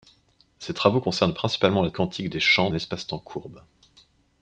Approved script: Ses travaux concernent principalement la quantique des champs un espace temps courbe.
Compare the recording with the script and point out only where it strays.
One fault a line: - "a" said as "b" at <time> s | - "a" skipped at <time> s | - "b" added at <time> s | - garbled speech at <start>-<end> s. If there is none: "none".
none